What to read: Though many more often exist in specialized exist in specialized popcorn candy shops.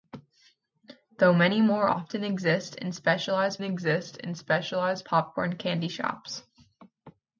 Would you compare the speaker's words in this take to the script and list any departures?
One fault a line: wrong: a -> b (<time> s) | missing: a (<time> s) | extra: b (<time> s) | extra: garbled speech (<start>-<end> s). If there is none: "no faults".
no faults